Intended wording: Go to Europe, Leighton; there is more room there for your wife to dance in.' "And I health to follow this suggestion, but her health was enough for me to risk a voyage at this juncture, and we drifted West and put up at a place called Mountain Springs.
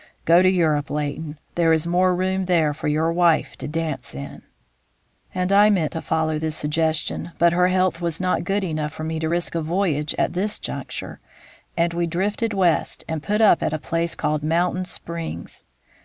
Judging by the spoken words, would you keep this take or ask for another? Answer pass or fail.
fail